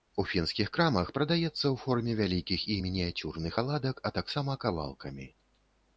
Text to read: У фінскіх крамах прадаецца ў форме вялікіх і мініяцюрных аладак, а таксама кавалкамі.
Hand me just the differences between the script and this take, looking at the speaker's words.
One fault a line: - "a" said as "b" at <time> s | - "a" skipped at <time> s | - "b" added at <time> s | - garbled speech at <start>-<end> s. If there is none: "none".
none